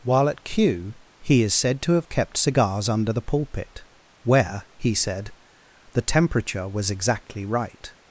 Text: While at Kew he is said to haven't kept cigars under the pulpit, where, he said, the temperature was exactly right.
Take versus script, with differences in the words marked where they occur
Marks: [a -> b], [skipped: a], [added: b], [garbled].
While at Kew he is said to [haven't -> have] kept cigars under the pulpit, where, he said, the temperature was exactly right.